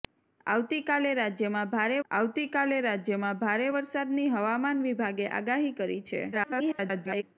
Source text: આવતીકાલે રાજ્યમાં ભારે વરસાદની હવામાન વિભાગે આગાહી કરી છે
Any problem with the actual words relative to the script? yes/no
yes